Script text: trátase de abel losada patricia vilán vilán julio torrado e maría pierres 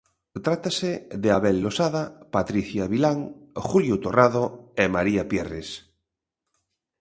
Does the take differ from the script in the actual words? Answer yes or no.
yes